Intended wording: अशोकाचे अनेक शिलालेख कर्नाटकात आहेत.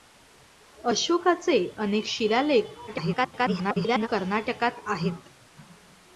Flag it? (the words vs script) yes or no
yes